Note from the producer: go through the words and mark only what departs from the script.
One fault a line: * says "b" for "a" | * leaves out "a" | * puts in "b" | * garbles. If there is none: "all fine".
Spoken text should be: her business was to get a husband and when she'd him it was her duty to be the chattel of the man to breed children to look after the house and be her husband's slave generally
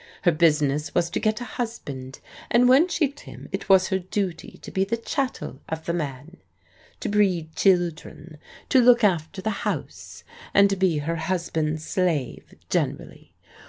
all fine